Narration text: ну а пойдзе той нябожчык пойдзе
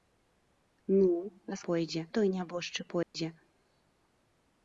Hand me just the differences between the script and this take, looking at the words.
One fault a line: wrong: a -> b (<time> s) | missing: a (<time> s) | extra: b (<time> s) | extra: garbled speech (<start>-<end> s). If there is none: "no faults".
no faults